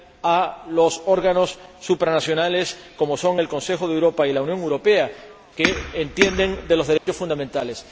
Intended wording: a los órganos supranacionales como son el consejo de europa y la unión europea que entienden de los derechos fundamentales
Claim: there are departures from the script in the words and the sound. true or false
true